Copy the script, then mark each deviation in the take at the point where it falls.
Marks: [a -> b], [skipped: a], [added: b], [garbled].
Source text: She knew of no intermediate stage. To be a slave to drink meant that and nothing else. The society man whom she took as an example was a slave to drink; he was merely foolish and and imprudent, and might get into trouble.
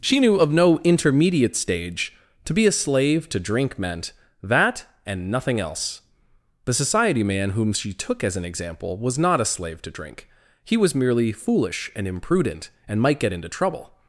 She knew of no intermediate stage. To be a slave to drink meant that and nothing else. The society man whom she took as an example was [added: not] a slave to drink; he was merely foolish and [skipped: and] imprudent, and might get into trouble.